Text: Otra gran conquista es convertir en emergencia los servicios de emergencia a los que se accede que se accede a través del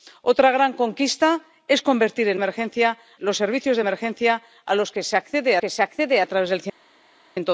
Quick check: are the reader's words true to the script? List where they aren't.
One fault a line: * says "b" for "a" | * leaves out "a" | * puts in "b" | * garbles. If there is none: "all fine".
all fine